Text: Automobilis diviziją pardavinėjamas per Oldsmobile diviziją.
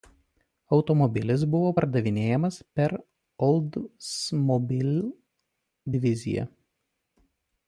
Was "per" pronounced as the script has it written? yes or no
yes